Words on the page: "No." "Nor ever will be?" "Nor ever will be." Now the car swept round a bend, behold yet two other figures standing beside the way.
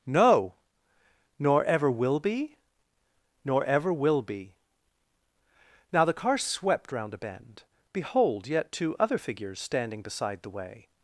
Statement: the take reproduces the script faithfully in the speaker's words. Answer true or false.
true